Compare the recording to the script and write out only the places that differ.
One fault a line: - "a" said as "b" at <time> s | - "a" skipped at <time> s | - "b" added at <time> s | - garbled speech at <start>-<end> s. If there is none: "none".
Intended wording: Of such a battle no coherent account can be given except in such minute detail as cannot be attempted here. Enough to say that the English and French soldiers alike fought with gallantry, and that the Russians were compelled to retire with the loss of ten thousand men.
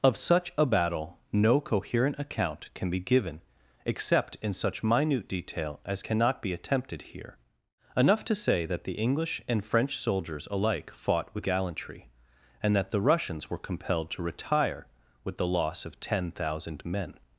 none